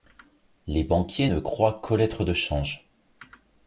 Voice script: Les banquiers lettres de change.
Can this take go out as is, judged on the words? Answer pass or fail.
fail